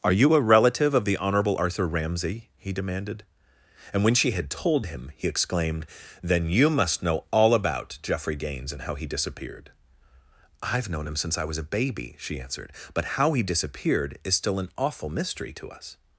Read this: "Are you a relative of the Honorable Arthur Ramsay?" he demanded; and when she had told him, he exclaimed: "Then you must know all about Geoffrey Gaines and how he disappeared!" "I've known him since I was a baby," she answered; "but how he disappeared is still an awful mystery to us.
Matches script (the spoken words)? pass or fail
pass